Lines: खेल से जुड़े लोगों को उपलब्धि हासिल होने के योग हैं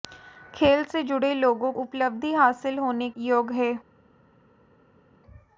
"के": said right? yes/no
no